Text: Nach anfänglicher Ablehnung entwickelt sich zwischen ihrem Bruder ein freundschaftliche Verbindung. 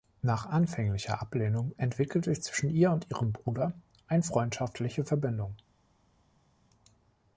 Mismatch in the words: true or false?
true